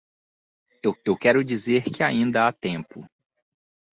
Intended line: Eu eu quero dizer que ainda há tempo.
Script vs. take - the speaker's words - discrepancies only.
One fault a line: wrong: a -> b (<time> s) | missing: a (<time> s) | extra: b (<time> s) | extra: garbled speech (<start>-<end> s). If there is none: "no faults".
no faults